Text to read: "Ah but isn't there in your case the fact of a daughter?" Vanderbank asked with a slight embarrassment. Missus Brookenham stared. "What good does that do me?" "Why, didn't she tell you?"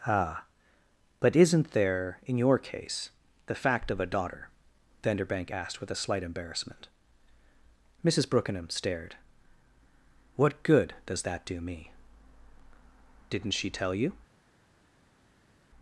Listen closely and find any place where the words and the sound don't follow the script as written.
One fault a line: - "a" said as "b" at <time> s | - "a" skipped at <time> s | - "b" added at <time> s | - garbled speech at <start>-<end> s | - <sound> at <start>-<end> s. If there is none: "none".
- "Why" skipped at 11.9 s